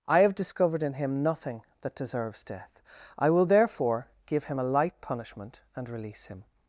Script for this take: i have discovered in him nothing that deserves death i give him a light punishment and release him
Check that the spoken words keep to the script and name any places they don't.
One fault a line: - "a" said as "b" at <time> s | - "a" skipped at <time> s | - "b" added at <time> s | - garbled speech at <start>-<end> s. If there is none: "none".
- "will therefore" added at 3.3 s